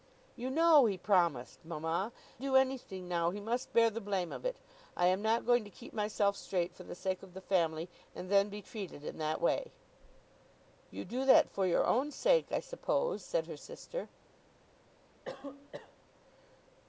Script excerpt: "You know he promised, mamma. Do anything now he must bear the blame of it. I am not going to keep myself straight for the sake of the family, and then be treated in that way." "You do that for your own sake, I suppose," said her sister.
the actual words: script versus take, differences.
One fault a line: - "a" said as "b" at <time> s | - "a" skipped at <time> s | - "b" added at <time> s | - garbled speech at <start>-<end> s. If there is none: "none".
none